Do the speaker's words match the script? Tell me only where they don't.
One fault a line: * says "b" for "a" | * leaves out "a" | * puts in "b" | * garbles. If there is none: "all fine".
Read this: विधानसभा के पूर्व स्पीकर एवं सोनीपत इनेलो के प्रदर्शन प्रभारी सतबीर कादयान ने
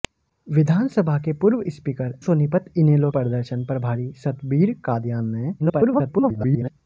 * leaves out "एवं"
* leaves out "के"
* garbles